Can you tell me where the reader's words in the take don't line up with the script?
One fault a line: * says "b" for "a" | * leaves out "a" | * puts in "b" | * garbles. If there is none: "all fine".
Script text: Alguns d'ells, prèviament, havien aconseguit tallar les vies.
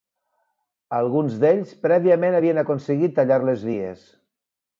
all fine